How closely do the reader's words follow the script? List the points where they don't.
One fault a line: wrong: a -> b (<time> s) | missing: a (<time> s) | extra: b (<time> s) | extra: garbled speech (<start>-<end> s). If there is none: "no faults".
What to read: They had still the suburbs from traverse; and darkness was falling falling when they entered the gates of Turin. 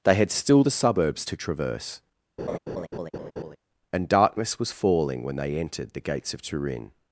wrong: from -> to (1.2 s)
missing: falling (5.2 s)